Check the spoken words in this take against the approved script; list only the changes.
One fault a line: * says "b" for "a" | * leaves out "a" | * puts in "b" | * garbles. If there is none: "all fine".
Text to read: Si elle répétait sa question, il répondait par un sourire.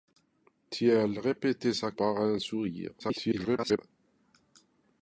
* leaves out "question il répondait"
* garbles